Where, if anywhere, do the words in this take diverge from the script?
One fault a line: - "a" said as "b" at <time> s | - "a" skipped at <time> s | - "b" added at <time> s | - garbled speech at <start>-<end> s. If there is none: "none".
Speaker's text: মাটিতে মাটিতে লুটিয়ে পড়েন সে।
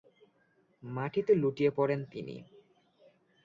- "মাটিতে" skipped at 1.3 s
- "সে" said as "তিনি" at 2.1 s